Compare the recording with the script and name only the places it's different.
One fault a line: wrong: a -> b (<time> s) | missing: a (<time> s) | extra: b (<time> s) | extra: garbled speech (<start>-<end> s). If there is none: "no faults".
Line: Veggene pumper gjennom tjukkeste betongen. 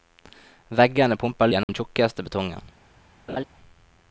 no faults